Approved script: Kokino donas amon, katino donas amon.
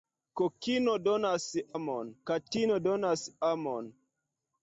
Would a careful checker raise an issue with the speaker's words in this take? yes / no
no